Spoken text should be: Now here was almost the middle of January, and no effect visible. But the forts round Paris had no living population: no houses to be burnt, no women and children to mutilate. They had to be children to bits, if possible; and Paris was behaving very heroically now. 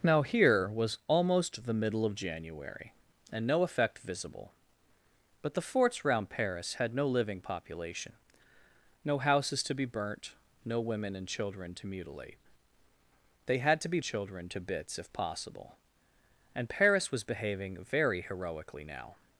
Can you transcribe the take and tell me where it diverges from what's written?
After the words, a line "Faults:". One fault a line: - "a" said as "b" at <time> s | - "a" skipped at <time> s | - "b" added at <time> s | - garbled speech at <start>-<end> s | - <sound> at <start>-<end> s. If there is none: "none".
Now here was almost the middle of January, and no effect visible. But the forts round Paris had no living population: no houses to be burnt, no women and children to mutilate. They had to be children to bits, if possible; and Paris was behaving very heroically now.
Faults:
none